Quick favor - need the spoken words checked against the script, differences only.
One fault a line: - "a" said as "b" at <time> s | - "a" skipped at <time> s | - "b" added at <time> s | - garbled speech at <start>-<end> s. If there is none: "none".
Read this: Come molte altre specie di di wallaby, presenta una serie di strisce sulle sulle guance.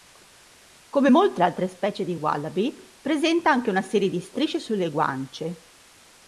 - "di" skipped at 2.1 s
- "anche" added at 3.5 s
- "sulle" skipped at 4.9 s